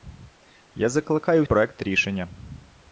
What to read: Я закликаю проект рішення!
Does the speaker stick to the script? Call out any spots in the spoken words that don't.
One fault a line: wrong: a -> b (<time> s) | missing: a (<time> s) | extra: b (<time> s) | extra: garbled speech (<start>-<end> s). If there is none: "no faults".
no faults